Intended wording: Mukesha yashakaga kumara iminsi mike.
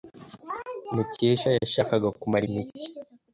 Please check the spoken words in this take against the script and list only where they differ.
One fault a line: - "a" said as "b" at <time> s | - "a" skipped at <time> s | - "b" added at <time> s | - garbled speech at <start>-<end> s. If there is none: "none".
- "iminsi" skipped at 2.4 s